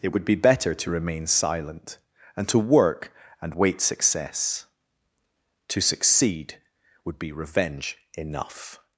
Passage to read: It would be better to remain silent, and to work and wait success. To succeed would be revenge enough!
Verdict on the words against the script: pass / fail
pass